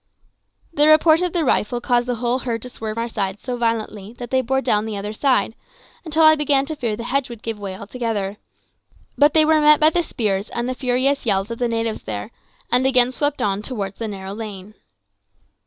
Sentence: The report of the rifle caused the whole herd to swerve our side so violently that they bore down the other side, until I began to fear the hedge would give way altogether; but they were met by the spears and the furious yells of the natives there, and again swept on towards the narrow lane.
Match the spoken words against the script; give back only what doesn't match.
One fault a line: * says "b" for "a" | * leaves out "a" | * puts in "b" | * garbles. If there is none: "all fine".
all fine